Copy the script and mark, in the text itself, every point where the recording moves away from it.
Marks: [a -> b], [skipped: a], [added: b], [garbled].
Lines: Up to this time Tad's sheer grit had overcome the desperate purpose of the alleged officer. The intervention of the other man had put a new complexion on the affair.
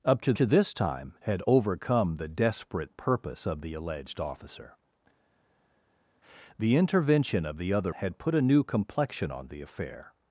Up to [added: to] this time [skipped: Tad's sheer grit] had overcome the desperate purpose of the alleged officer. The intervention of the other [skipped: man] had put a new complexion on the affair.